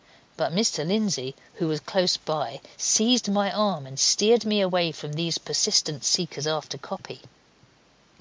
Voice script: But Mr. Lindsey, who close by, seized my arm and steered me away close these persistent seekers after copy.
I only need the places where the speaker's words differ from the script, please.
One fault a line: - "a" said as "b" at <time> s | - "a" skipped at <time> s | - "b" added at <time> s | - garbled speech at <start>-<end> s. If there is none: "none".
- "was" added at 1.7 s
- "close" said as "from" at 4.9 s